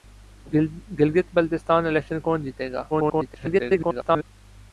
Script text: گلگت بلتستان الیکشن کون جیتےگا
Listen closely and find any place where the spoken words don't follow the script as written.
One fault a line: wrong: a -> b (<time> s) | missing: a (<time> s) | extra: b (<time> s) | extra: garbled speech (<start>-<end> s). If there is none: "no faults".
extra: garbled speech (2.9-4.2 s)